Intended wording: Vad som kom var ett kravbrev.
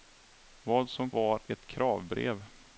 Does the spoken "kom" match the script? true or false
false